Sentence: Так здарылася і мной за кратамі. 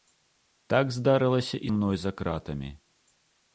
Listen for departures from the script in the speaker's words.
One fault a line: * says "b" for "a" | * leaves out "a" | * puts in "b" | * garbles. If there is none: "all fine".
all fine